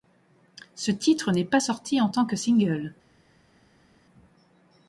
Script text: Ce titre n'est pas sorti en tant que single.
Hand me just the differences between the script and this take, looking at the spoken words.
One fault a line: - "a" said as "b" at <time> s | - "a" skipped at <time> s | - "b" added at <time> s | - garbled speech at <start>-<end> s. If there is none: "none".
none